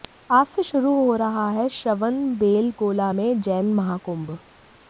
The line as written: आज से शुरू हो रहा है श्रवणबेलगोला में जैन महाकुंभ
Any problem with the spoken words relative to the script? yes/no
no